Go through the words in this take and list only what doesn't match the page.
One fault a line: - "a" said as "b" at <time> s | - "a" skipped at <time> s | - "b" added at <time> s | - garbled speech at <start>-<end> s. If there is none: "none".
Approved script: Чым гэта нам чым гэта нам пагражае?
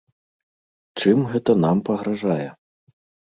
- "чым гэта нам" skipped at 1.8 s